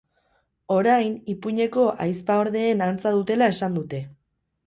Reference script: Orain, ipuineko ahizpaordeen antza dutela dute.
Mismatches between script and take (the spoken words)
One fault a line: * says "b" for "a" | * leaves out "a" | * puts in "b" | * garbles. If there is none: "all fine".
* puts in "esan"